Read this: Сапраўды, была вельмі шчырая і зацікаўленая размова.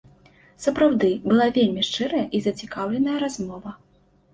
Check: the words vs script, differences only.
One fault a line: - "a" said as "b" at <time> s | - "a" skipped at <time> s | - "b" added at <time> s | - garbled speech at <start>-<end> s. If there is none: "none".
none